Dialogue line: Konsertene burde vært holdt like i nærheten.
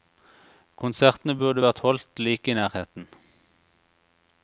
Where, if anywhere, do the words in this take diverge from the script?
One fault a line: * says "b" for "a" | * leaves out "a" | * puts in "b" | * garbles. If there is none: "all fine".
all fine